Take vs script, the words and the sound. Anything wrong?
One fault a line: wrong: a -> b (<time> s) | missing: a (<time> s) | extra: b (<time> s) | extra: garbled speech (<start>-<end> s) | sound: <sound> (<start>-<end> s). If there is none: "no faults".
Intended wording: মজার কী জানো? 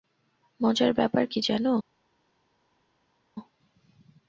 extra: ব্যাপার (0.9 s)